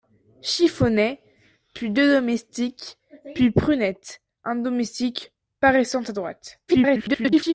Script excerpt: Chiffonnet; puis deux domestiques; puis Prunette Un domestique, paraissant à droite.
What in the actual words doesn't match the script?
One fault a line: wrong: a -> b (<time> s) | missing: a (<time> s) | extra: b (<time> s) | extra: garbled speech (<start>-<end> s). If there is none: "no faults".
extra: garbled speech (6.7-7.5 s)